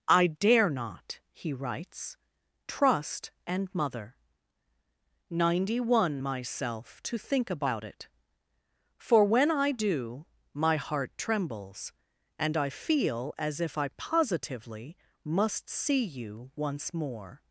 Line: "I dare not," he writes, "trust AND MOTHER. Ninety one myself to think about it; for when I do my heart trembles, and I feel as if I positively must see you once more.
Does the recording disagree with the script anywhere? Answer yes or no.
no